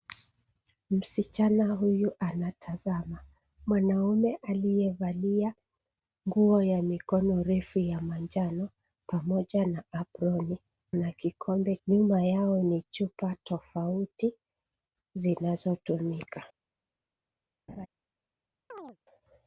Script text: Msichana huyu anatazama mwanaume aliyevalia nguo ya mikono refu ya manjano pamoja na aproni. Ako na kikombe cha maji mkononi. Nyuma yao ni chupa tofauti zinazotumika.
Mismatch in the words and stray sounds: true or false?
true